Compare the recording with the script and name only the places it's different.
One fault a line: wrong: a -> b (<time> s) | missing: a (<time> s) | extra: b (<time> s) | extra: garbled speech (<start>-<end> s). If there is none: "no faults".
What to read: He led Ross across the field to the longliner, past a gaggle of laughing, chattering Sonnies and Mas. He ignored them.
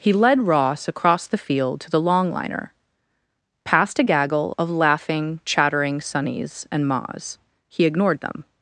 no faults